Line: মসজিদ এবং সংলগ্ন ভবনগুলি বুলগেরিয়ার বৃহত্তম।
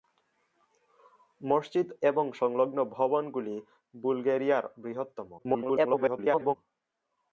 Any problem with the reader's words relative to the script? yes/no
yes